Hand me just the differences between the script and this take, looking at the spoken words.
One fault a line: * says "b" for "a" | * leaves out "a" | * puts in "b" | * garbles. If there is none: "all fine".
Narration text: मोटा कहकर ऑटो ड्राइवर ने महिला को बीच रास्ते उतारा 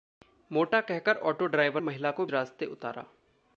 * leaves out "ने"
* leaves out "बीच"